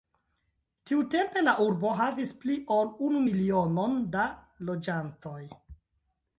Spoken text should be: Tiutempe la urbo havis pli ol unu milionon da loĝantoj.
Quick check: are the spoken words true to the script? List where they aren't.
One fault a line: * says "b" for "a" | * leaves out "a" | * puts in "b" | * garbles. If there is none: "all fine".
all fine